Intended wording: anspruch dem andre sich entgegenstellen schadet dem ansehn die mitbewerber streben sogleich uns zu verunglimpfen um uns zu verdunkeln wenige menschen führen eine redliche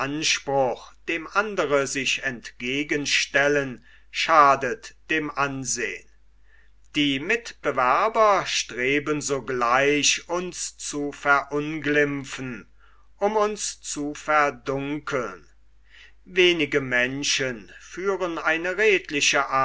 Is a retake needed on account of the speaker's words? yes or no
no